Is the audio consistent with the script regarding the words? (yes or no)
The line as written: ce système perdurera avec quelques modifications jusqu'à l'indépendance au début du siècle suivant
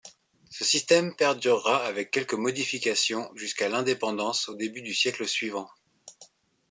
yes